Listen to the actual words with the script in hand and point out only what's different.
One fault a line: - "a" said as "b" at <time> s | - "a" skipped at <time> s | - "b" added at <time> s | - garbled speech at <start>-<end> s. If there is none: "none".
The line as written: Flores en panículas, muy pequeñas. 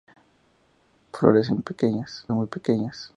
- "panículas" said as "pequeñas" at 1.6 s